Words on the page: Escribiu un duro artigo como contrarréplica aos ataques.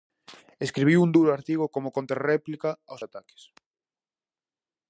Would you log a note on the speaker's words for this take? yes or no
no